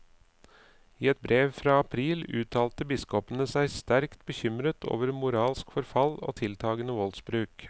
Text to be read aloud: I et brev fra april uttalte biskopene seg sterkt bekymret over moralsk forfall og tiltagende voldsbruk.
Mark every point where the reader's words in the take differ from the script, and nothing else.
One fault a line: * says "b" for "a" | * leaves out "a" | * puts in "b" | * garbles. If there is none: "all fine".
all fine